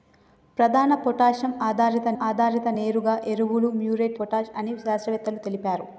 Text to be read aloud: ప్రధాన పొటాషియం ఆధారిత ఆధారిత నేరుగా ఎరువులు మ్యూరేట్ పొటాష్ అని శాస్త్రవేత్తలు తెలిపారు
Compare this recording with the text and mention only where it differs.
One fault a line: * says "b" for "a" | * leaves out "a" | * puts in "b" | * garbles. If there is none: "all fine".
all fine